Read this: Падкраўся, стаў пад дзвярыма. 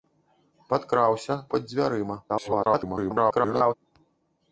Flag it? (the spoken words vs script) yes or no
yes